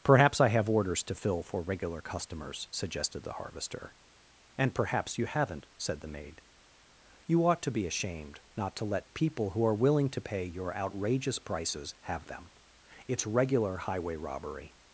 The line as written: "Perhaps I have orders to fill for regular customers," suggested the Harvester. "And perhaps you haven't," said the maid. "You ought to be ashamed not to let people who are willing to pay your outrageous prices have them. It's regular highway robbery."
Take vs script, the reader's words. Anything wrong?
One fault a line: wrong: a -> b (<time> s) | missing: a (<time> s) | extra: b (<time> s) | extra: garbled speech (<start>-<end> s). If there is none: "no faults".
no faults